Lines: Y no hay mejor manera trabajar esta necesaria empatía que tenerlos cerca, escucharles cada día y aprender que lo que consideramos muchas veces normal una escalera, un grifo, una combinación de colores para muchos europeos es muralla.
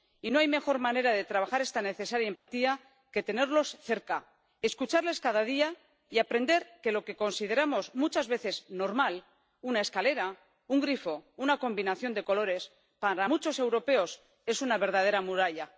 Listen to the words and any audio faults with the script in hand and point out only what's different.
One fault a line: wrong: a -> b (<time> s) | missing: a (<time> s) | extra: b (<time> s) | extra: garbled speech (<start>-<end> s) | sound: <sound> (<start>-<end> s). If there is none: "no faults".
extra: de (1.1 s)
sound: dropout (2.4-2.5 s)
extra: una verdadera (14.6 s)